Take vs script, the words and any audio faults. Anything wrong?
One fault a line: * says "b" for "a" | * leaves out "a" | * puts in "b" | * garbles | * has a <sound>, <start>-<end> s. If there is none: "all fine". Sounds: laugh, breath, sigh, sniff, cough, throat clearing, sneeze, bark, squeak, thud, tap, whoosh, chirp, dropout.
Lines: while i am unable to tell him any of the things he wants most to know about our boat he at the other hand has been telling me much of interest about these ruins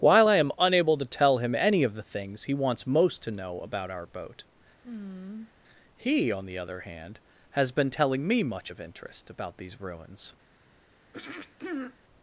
* has a sigh, 4.8-5.5 s
* says "on" for "at"
* has a throat clearing, 11.1-12.0 s